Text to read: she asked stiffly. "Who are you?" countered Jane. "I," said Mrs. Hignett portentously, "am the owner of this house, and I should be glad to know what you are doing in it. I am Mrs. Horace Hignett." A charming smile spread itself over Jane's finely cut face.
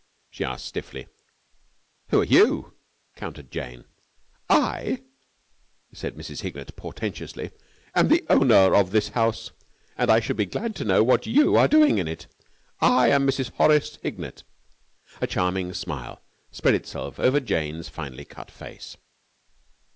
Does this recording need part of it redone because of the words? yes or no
no